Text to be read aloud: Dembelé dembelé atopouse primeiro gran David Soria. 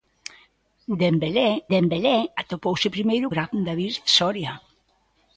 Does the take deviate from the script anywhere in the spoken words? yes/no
no